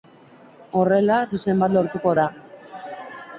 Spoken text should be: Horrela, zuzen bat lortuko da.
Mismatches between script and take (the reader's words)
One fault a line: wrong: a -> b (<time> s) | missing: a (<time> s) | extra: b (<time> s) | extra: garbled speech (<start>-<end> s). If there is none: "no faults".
no faults